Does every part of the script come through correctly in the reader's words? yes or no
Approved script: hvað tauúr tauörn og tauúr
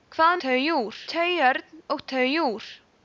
yes